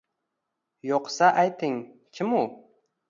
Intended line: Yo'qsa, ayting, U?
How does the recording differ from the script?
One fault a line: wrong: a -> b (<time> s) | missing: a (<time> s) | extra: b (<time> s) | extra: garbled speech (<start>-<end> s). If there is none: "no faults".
extra: Kim (2.2 s)